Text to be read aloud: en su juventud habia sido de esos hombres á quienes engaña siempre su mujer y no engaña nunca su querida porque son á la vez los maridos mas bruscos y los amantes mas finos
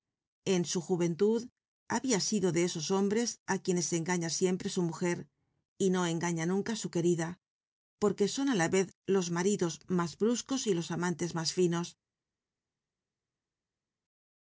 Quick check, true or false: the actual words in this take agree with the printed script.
true